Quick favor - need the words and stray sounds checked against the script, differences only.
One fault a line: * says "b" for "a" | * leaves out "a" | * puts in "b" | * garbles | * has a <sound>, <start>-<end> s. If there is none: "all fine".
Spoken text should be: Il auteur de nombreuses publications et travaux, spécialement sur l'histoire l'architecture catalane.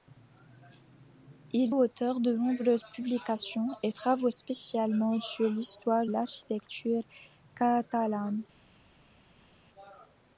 all fine